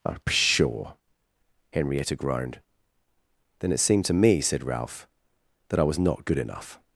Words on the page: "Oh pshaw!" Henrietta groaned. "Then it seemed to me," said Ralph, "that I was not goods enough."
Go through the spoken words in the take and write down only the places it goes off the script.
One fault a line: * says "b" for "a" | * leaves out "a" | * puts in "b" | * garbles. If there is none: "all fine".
* says "good" for "goods"